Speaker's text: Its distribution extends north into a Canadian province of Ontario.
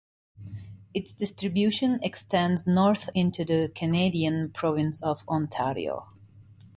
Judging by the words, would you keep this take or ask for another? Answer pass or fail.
fail